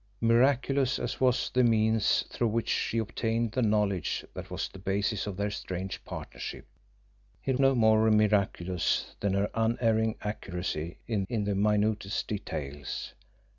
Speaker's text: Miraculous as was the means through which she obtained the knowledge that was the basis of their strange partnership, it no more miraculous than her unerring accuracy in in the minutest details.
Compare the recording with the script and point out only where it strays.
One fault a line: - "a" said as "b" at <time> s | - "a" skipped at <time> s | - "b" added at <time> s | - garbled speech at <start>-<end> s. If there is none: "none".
none